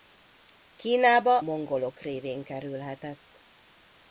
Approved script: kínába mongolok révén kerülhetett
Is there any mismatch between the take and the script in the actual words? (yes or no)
no